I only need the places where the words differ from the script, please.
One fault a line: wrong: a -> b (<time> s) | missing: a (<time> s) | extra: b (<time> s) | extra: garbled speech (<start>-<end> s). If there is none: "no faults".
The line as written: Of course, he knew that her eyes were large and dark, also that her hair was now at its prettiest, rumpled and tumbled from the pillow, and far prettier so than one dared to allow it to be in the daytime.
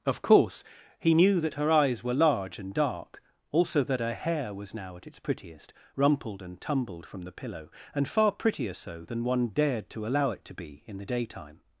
no faults